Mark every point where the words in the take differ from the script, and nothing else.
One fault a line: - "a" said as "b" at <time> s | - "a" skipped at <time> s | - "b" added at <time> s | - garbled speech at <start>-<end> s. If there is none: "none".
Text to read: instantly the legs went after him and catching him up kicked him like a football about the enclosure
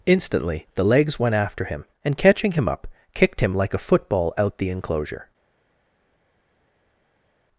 - "about" said as "out" at 4.4 s